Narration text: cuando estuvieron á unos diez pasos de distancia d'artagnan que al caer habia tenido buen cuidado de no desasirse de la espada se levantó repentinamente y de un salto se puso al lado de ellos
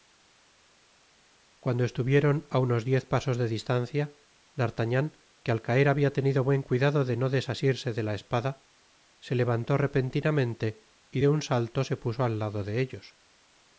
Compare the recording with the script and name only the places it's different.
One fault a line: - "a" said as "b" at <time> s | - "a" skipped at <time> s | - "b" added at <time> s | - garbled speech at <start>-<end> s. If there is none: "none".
none